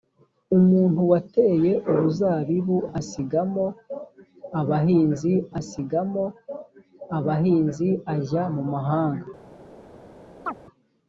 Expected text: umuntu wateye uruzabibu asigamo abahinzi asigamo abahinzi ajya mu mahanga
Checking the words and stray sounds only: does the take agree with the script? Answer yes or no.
no